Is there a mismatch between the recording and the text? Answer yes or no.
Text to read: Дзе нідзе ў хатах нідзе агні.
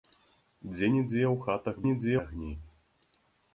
no